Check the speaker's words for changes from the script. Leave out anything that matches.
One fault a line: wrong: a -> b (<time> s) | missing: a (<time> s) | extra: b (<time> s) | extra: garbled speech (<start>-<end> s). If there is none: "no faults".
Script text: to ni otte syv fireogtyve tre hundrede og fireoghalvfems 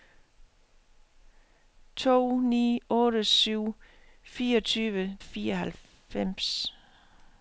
missing: tre hundrede og (5.2 s)